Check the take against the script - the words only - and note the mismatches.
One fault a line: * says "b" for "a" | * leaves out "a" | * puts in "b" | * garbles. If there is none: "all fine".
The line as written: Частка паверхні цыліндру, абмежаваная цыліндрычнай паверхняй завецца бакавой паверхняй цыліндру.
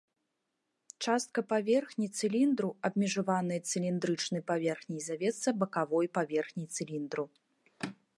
all fine